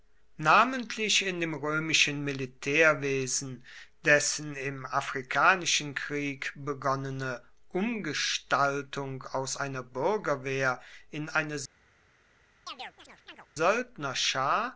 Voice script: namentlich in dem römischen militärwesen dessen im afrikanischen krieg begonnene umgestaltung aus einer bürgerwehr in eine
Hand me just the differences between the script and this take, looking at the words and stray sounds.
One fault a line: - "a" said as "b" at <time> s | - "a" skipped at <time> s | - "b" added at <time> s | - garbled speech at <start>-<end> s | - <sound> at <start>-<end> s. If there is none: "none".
- chirp at 12.7-13.5 s